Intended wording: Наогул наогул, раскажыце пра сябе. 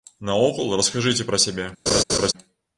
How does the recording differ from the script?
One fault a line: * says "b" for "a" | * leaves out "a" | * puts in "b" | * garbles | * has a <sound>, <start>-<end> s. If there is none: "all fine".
* leaves out "наогул"
* has a laugh, 1.9-2.3 s